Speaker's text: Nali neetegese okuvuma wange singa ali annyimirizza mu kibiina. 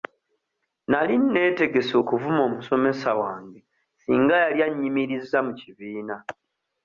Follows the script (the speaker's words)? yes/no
no